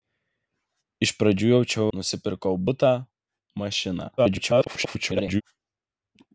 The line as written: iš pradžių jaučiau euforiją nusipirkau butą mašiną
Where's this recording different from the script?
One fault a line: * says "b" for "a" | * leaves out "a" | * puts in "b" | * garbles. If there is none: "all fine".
* leaves out "euforiją"
* garbles